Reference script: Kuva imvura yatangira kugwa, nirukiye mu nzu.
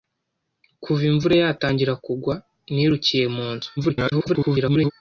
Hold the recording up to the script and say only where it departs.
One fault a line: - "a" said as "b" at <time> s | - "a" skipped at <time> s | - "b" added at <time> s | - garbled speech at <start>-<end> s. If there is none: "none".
- garbled speech at 3.8-4.9 s